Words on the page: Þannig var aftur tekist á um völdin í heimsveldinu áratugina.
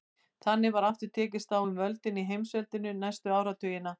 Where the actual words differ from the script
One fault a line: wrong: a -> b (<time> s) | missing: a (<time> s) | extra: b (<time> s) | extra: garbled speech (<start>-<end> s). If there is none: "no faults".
extra: næstu (3.0 s)